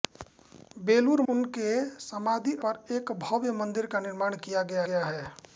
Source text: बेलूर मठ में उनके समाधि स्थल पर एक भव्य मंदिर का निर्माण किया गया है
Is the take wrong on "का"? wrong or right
right